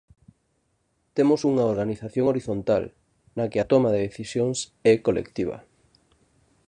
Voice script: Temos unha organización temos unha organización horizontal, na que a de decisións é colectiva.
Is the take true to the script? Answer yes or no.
no